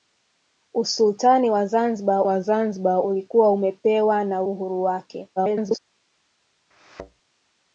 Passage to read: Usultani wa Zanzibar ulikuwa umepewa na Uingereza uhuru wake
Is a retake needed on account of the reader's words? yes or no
yes